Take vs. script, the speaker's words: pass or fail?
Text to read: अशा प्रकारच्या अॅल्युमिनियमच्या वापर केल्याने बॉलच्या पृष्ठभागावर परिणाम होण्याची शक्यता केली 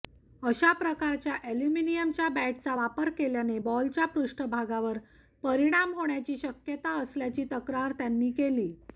fail